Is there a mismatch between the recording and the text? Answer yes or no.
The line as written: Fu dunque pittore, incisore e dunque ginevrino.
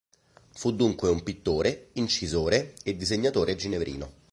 yes